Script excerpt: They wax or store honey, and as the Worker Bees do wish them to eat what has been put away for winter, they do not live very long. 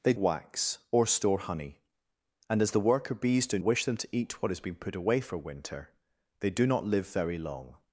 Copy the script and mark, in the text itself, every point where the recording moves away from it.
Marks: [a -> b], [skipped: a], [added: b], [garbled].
They wax or store honey, and as the Worker Bees do wish them to eat what has been put away for winter, they do not live very long.